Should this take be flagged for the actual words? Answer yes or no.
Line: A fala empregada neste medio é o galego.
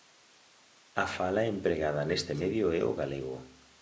no